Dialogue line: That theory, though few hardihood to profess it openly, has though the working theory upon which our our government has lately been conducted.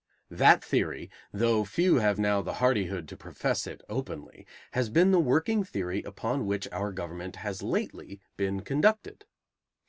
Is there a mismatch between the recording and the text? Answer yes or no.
yes